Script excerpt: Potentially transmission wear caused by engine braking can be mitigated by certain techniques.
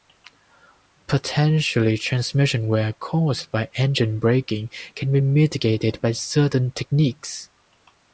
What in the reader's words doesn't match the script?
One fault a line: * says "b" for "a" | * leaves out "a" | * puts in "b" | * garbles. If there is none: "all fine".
all fine